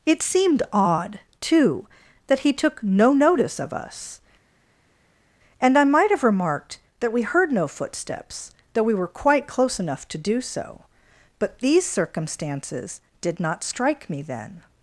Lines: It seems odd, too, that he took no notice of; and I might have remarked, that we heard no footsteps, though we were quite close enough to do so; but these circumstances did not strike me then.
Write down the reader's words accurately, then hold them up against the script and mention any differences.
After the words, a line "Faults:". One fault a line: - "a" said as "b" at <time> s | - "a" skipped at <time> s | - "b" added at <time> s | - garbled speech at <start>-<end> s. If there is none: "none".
It seemed odd, too, that he took no notice of us; and I might have remarked, that we heard no footsteps, though we were quite close enough to do so; but these circumstances did not strike me then.
Faults:
- "seems" said as "seemed" at 0.2 s
- "us" added at 3.7 s